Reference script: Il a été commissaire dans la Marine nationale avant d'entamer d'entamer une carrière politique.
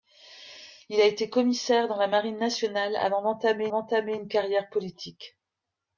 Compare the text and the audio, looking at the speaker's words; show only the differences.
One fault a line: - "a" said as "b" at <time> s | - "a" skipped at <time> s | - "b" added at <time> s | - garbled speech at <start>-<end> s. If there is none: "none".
none